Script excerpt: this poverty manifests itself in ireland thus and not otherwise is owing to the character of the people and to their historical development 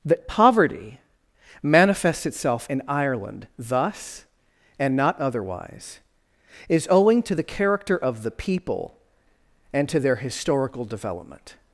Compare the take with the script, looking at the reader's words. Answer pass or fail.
fail